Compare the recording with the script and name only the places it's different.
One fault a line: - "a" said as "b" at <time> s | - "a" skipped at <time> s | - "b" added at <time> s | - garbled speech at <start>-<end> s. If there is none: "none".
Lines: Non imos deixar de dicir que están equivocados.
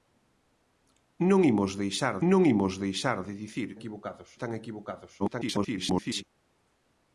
- "non imos deixar" added at 2.3 s
- "que" said as "equivocados" at 3.8 s
- garbled speech at 5.2-6.2 s